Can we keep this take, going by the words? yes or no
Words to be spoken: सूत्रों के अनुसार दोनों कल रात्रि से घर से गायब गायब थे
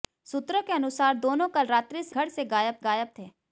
yes